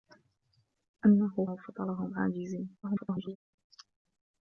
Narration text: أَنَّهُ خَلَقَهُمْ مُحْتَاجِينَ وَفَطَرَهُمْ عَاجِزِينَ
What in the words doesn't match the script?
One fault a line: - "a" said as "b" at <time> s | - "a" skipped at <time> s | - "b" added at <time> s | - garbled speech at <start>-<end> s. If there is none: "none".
- "خَلَقَهُمْ مُحْتَاجِينَ" skipped at 1.4 s
- garbled speech at 2.8-3.4 s